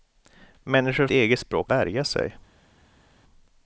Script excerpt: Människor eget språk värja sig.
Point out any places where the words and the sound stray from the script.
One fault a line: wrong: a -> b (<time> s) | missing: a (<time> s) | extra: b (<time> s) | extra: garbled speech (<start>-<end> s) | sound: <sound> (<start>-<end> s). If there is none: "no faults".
no faults